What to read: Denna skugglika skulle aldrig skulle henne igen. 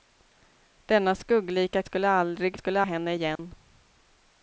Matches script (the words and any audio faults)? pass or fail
fail